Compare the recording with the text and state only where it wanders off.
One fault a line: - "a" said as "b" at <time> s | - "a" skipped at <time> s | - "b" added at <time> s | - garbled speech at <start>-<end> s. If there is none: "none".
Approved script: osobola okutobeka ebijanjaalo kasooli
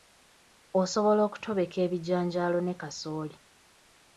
- "ne" added at 2.6 s